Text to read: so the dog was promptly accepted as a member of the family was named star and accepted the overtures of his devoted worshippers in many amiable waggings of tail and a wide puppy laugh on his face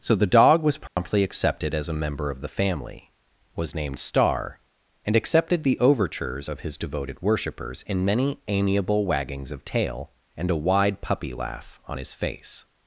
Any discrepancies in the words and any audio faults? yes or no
yes